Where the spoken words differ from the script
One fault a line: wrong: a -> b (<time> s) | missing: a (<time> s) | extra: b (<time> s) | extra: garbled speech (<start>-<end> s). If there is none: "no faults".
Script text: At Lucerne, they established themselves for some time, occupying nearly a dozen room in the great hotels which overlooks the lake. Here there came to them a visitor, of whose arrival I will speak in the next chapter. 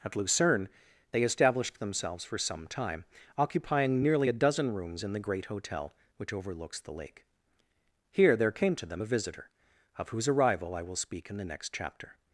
wrong: room -> rooms (4.7 s)
wrong: hotels -> hotel (5.5 s)